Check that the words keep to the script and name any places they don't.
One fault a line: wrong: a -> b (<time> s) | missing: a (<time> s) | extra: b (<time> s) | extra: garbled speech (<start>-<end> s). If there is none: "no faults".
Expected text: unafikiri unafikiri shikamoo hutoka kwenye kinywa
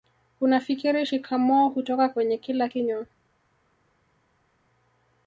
missing: unafikiri (1.1 s)
extra: kila (2.4 s)